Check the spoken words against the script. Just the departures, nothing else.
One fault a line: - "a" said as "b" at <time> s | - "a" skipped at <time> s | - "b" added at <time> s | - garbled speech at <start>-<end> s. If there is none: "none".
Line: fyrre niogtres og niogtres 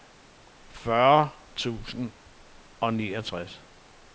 - "niogtres" said as "tusind" at 1.6 s